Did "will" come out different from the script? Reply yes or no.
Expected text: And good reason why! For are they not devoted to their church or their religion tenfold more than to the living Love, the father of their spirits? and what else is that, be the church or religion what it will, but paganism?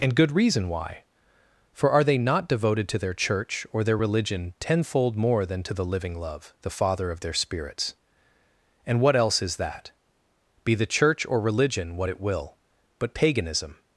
no